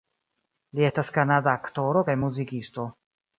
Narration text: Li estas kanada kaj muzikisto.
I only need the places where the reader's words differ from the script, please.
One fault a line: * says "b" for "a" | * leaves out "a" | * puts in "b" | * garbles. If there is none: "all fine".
* puts in "aktoro"